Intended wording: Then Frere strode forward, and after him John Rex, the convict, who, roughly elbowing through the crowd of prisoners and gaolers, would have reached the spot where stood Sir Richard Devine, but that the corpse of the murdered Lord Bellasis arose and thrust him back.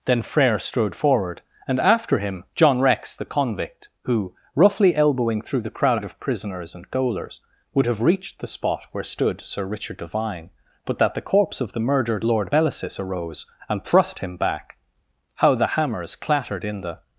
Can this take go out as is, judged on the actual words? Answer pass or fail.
fail